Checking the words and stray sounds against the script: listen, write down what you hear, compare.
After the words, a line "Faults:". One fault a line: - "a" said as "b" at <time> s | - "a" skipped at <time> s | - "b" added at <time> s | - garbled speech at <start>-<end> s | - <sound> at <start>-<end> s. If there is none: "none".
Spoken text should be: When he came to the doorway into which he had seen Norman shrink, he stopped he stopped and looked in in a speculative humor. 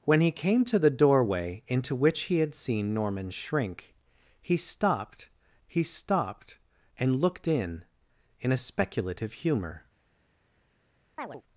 When he came to the doorway into which he had seen Norman shrink, he stopped he stopped and looked in in a speculative humor.
Faults:
- chirp at 11.2-11.4 s